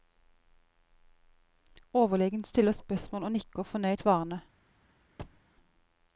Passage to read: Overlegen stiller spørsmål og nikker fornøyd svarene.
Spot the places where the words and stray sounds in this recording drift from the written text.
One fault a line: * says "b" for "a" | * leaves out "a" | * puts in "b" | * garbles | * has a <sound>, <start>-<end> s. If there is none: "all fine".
* has a thud, 5.2-5.4 s